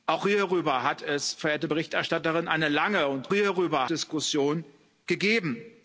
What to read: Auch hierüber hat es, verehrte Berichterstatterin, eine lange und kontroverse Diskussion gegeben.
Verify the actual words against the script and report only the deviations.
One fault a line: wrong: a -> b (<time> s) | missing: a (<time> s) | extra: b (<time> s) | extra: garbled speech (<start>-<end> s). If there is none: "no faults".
wrong: kontroverse -> hierüber (3.3 s)